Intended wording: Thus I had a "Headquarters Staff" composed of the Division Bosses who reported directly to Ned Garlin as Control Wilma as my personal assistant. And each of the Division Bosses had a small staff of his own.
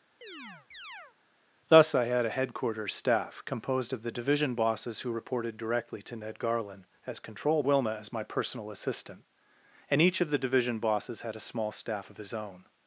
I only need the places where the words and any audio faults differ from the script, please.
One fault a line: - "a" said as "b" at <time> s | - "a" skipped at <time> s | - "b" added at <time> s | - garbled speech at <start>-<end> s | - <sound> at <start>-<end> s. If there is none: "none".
- chirp at 0.2-1.2 s